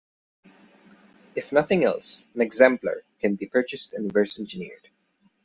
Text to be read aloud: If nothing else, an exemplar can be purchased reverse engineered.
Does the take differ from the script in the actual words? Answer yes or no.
yes